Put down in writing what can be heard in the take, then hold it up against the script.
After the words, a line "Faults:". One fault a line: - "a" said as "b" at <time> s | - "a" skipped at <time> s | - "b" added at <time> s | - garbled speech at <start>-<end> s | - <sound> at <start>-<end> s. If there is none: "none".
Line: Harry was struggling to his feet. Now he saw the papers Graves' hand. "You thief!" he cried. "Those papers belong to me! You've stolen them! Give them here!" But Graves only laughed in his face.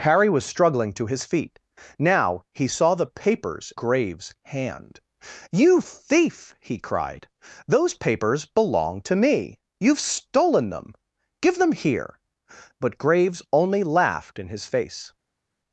Harry was struggling to his feet. Now he saw the papers Graves' hand. "You thief!" he cried. "Those papers belong to me! You've stolen them! Give them here!" But Graves only laughed in his face.
Faults:
none